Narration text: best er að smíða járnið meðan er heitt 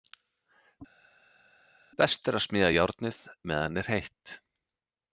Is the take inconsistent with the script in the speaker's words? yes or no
no